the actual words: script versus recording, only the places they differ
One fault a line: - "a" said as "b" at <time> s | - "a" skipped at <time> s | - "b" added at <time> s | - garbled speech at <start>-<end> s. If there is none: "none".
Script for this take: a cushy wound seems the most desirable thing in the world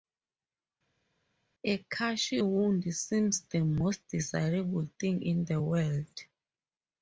none